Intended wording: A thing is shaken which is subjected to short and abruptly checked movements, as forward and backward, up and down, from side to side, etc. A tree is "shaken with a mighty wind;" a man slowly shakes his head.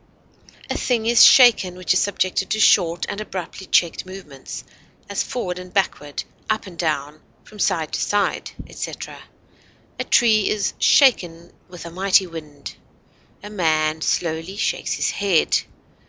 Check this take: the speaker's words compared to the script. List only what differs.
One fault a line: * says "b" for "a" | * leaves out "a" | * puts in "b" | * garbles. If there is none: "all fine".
all fine